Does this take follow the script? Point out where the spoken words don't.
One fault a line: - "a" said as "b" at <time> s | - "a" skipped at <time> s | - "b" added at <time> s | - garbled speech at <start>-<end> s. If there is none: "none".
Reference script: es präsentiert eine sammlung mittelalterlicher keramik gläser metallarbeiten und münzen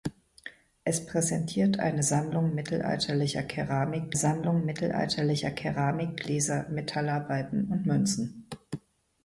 - "sammlung mittelalterlicher keramik" added at 4.1 s